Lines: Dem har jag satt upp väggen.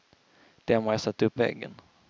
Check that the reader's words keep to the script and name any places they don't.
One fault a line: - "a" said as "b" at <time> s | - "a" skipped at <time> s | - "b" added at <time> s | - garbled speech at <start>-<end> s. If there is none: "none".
none